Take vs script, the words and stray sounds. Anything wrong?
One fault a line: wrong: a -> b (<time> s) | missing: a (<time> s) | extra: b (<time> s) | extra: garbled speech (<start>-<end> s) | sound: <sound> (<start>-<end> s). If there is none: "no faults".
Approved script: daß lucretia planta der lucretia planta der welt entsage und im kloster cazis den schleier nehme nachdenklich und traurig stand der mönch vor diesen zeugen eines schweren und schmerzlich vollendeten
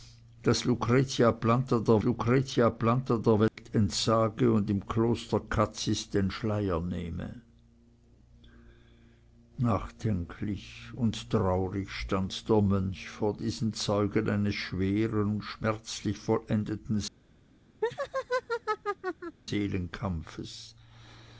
sound: dropout (3.5-3.6 s)
sound: laugh (17.8-19.4 s)